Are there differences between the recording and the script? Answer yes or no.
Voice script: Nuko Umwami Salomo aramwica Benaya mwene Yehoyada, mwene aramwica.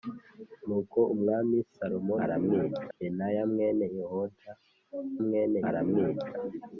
no